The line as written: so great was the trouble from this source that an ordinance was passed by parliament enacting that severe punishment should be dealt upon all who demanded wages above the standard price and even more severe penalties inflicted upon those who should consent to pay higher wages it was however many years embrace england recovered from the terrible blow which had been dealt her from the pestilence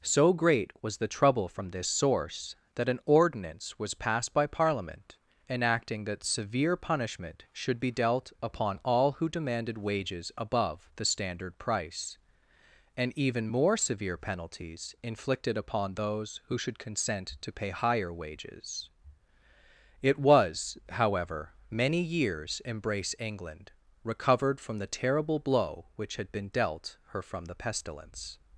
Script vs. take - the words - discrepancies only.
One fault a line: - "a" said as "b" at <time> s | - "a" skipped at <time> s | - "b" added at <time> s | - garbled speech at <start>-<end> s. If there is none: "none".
none